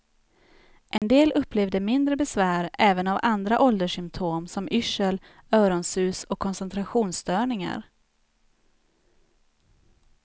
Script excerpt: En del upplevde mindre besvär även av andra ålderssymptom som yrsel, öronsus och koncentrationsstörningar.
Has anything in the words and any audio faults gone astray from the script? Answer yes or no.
yes